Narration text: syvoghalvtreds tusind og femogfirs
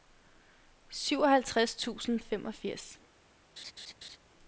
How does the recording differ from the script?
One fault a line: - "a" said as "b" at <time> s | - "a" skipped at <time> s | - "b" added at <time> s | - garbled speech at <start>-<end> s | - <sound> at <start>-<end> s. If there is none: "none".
- laugh at 3.6-4.2 s